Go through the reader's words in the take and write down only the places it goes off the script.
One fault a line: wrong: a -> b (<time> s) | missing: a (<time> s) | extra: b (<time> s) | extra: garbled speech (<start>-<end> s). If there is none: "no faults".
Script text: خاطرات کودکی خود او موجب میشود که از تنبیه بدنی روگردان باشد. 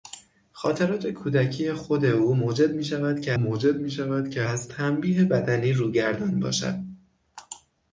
extra: موجب میشود که (3.4 s)